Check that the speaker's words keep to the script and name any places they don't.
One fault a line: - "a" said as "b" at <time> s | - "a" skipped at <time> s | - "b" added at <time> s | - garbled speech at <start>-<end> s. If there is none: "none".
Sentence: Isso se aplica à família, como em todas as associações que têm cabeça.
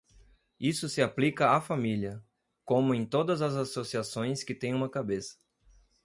- "uma" added at 4.7 s